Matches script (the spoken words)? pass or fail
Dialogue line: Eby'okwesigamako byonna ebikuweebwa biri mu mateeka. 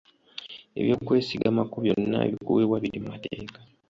pass